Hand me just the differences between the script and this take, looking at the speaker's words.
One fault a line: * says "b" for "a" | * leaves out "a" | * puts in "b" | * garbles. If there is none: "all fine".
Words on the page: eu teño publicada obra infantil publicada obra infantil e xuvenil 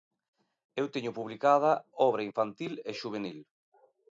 * leaves out "publicada obra infantil"